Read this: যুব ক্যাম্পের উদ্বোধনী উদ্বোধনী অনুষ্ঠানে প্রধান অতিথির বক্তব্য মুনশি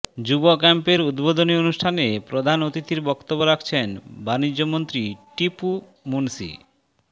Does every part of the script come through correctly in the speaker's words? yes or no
no